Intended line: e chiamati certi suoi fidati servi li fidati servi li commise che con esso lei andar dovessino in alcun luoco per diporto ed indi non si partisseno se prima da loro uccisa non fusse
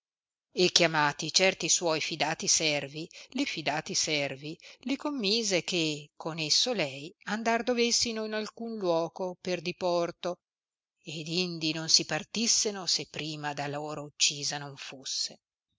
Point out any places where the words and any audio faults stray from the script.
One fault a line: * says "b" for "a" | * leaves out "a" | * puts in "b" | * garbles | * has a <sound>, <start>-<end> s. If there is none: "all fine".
all fine